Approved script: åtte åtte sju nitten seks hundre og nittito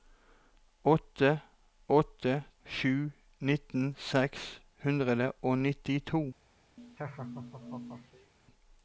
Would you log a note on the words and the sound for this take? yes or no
yes